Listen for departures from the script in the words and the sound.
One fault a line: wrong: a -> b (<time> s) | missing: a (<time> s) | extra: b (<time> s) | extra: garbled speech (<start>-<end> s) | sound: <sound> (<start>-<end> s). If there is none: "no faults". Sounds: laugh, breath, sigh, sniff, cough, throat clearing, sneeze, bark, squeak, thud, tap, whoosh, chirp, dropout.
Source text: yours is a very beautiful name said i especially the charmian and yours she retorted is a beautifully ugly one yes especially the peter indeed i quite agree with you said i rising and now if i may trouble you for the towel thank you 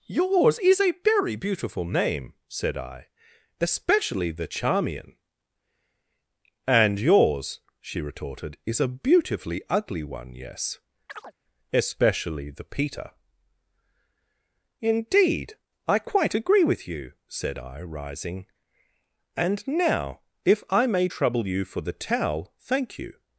sound: chirp (11.1-11.3 s)